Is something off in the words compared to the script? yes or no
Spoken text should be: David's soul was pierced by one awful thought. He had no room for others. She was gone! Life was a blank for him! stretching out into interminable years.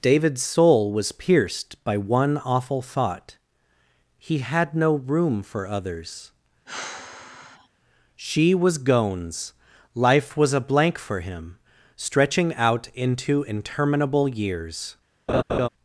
yes